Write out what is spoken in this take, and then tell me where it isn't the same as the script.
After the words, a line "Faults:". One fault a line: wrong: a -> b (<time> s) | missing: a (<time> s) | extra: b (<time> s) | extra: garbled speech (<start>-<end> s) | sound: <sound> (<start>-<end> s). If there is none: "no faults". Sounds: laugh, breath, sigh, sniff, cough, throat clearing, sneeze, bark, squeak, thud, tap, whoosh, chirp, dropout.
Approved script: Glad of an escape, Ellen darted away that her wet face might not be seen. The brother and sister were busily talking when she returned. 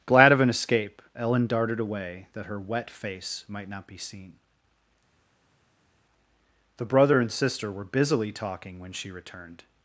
Glad of an escape, Ellen darted away that her wet face might not be seen. The brother and sister were busily talking when she returned.
Faults:
no faults